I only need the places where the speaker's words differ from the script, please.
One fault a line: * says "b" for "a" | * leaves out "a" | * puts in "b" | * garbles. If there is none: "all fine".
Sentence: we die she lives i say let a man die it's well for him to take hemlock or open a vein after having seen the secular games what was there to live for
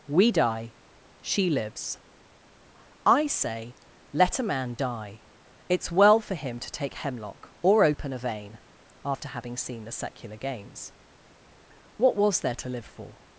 all fine